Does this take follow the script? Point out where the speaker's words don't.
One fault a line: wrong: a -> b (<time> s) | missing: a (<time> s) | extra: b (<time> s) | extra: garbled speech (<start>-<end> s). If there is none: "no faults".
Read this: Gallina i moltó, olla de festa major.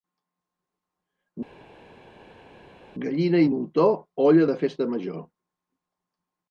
no faults